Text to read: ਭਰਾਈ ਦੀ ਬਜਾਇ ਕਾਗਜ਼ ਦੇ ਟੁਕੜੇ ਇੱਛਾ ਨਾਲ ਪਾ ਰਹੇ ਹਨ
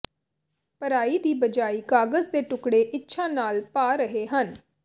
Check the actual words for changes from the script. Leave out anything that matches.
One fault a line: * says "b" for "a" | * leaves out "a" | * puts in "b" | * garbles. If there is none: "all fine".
all fine